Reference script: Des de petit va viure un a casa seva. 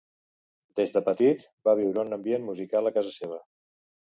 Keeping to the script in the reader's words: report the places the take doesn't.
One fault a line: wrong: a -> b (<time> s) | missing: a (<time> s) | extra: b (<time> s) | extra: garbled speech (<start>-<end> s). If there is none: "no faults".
extra: ambient musical (2.2 s)